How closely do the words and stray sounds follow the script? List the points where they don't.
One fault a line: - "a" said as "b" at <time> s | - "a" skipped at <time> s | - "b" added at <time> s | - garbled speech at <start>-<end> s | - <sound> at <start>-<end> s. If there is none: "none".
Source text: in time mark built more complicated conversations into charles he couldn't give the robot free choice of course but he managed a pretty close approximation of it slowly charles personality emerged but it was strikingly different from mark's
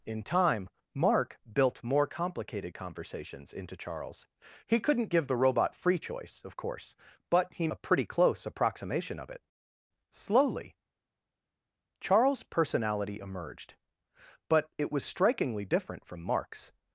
- "managed" skipped at 7.7 s